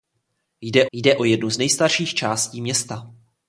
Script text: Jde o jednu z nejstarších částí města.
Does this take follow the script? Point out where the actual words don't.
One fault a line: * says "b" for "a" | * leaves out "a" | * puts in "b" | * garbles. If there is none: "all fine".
* puts in "jde"